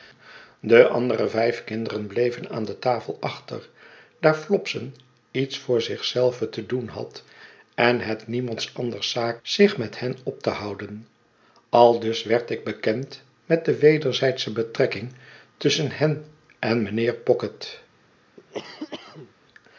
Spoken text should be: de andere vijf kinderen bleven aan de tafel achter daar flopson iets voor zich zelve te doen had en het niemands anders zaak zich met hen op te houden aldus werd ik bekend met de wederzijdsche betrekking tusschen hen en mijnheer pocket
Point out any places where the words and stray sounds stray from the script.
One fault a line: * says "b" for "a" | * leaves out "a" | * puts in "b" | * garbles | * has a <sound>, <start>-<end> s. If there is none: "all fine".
* has a cough, 18.4-19.3 s